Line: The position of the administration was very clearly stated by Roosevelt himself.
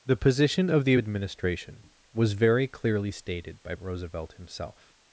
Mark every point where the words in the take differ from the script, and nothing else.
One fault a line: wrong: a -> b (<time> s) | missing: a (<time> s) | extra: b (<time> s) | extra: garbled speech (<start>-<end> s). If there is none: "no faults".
no faults